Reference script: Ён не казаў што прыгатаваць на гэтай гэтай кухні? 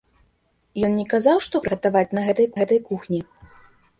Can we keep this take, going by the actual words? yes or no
yes